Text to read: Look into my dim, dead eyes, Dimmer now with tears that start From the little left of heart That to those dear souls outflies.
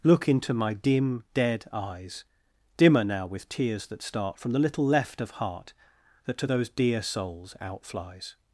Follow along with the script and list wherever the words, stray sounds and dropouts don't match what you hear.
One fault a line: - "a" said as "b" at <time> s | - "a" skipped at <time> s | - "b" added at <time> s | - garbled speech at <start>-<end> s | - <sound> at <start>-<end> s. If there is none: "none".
none